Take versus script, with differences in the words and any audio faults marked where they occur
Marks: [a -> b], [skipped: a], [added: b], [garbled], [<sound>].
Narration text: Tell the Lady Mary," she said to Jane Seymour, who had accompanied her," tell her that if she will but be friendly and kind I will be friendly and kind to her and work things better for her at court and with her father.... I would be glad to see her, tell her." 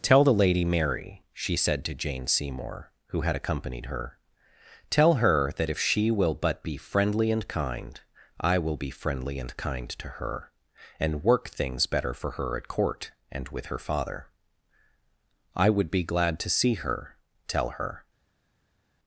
Tell the Lady Mary," she said to Jane Seymour, who had accompanied her," tell her that if she will but be friendly and kind I will be friendly and kind to her and work things better for her at court and with her father.... I would be glad to see her, tell her."